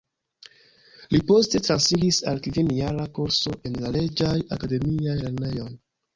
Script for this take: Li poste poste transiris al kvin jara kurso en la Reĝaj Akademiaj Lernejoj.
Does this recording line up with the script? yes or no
no